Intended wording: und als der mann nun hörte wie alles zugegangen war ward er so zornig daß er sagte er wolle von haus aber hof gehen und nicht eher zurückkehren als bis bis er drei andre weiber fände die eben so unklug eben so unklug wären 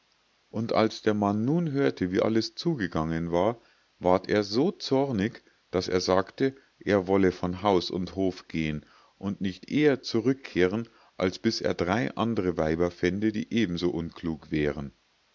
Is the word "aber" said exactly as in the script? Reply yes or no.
no